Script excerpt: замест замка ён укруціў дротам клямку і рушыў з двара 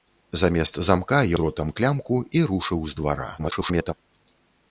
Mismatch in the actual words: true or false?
true